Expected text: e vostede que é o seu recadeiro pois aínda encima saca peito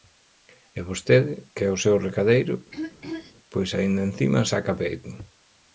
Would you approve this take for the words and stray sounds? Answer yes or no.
no